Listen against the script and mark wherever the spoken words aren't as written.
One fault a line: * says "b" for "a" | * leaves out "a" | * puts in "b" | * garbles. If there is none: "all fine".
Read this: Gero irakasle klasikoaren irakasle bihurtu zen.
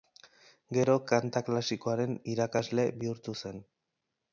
* says "kanta" for "irakasle"